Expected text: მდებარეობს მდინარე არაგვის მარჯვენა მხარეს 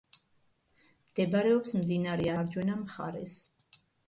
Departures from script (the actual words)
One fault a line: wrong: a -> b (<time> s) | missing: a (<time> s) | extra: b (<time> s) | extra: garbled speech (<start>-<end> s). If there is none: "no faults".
missing: არაგვის (2.3 s)